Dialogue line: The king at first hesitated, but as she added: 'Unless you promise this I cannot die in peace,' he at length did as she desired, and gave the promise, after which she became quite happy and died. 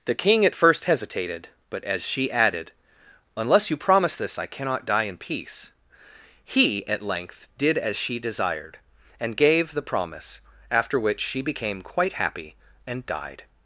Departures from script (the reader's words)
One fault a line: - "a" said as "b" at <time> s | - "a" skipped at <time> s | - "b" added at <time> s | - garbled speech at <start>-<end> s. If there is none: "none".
none